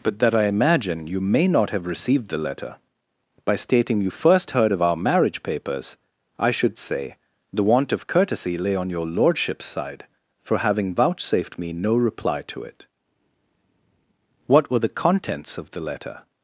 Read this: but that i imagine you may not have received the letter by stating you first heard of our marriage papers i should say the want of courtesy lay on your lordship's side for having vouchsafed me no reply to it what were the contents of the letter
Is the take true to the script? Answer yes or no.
yes